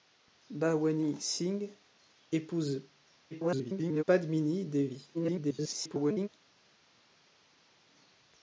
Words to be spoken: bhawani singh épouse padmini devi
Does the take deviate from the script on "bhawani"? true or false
false